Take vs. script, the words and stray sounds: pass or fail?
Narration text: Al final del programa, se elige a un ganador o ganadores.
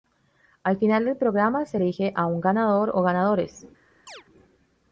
fail